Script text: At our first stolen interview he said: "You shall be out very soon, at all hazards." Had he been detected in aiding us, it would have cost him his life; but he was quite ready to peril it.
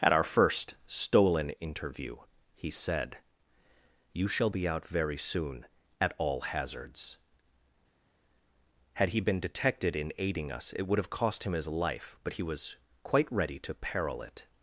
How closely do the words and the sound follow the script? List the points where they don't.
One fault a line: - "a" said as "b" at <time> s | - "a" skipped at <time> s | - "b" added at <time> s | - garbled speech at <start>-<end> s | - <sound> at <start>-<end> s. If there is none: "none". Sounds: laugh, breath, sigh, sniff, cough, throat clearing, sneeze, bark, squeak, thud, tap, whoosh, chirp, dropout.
none